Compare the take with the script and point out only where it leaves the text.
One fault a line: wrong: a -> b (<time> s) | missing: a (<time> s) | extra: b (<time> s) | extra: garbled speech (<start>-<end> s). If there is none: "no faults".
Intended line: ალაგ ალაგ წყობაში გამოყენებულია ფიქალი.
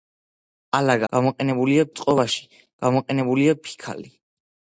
wrong: ალაგ -> გამოყენებულია (1.1 s)